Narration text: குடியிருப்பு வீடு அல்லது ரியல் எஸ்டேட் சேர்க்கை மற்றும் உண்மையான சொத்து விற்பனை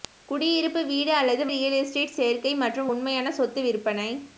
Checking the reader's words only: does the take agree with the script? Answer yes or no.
yes